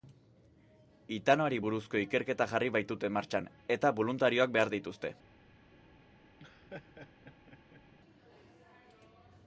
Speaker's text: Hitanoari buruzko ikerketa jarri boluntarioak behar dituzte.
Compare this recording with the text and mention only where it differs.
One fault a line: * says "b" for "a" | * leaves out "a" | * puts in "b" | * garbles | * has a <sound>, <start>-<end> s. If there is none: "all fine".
* puts in "baitute martxan eta"
* has a laugh, 6.4-7.8 s